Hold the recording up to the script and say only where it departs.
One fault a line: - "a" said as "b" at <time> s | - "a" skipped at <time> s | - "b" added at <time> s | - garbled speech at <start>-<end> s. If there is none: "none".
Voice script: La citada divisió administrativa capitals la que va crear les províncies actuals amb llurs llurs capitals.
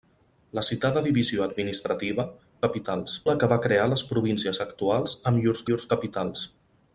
none